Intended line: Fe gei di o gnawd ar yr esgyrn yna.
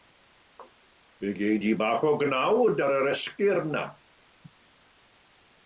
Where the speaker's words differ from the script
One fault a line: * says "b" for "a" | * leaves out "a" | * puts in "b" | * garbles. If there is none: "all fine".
* puts in "bach"